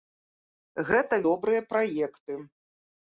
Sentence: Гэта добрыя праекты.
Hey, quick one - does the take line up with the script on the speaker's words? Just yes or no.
yes